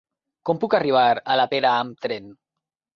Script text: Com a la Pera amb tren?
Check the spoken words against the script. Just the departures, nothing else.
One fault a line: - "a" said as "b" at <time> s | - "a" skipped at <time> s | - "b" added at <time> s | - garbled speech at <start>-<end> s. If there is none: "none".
- "puc arribar" added at 0.6 s